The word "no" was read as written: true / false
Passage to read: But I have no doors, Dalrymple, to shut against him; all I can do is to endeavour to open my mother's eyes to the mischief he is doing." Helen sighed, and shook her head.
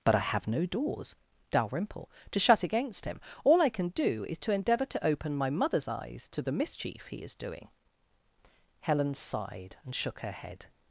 true